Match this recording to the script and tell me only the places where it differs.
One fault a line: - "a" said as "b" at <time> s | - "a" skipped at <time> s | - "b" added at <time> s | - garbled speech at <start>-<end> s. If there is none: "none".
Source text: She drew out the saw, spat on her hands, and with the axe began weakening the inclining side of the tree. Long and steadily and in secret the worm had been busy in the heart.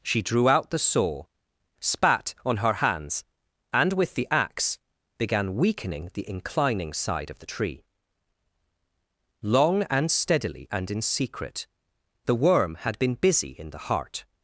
none